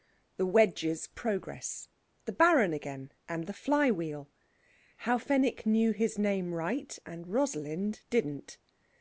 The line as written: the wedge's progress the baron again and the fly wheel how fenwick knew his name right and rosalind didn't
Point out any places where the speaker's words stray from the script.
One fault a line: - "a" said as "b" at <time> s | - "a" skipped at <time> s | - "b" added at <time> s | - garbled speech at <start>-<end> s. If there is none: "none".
none